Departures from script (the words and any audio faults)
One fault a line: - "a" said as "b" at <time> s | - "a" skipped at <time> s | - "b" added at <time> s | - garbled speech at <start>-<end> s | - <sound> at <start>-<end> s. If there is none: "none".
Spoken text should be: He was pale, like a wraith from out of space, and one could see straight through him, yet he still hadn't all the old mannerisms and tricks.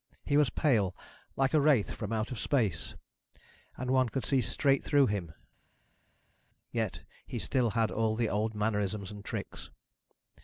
- "hadn't" said as "had" at 7.8 s